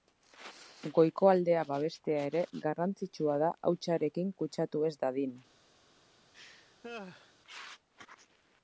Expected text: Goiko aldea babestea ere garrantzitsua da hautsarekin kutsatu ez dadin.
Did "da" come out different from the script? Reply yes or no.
no